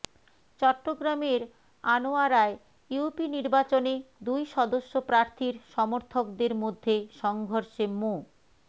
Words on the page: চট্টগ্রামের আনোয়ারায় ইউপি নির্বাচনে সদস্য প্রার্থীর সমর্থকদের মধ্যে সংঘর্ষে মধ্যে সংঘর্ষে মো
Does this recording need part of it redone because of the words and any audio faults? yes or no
yes